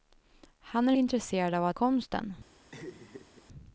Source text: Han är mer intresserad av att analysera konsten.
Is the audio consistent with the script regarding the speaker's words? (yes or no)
no